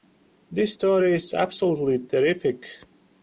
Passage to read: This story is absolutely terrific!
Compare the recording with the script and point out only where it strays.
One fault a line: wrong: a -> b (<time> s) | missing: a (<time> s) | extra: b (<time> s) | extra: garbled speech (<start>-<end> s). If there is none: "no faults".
no faults